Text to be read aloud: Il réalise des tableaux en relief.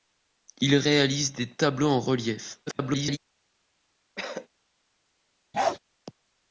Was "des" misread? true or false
false